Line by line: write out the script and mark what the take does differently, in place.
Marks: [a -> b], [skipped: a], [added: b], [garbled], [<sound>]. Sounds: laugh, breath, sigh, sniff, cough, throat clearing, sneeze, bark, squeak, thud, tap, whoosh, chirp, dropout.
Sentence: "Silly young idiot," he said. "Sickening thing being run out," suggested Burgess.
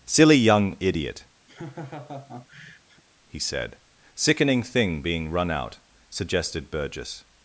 "Silly young idiot," [laugh] he said. "Sickening thing being run out," suggested Burgess.